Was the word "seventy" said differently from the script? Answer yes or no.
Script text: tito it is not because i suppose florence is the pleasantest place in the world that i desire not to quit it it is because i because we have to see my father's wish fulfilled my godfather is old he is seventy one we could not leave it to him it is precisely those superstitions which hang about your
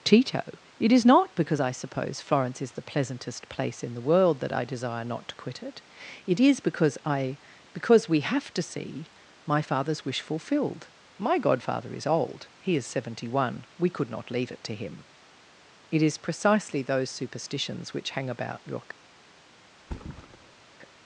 no